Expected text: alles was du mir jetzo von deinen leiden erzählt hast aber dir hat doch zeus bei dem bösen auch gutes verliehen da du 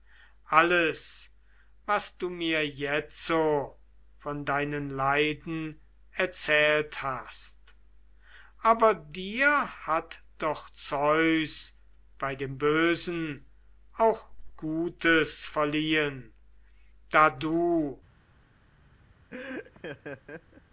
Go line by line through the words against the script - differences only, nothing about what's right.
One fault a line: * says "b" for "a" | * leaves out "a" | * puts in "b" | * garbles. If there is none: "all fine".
all fine